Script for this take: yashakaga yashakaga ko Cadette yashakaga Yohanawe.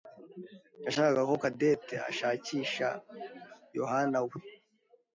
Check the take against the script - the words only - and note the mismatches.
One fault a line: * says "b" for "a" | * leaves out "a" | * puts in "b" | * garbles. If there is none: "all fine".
* leaves out "yashakaga"
* says "ashakisha" for "yashakaga"